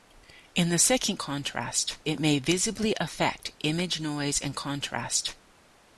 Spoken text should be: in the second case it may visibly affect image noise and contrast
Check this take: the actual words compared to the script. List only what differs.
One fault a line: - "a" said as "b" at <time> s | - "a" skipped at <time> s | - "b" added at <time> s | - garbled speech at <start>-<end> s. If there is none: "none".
- "case" said as "contrast" at 1.2 s